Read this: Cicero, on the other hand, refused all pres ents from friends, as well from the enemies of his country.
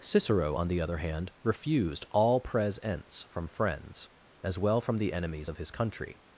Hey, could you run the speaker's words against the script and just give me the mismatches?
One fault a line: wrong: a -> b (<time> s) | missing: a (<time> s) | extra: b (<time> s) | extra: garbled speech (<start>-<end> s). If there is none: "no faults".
no faults